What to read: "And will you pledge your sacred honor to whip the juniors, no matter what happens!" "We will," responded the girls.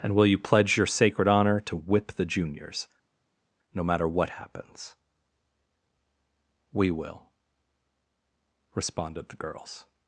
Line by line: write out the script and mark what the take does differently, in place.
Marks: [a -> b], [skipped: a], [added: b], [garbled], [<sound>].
"And will you pledge your sacred honor to whip the juniors, no matter what happens!" "We will," responded the girls.